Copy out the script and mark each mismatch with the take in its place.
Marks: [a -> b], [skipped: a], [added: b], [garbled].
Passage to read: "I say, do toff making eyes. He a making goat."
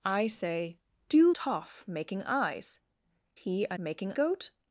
"I say, do toff making eyes. He a making goat."